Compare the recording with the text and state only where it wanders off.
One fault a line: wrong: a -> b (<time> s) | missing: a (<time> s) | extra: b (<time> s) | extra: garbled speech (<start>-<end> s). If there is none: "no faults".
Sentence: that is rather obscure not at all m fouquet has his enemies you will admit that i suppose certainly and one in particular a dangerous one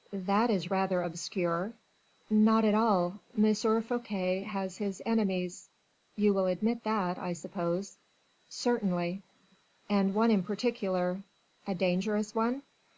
no faults